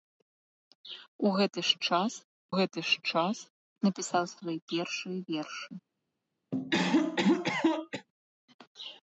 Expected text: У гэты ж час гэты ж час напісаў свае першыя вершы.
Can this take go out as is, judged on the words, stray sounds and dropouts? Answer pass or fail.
fail